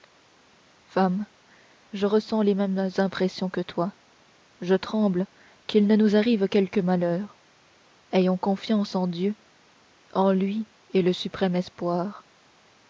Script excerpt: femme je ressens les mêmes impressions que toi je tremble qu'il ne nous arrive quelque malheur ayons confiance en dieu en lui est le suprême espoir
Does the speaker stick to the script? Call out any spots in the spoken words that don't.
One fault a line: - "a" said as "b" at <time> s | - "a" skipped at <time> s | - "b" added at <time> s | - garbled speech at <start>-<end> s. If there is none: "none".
none